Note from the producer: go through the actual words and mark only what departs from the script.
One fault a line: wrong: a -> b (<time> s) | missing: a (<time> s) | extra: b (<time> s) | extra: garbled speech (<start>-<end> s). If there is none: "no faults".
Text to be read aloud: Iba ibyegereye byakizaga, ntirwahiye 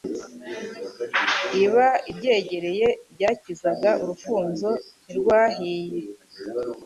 extra: urufunzo (4.0 s)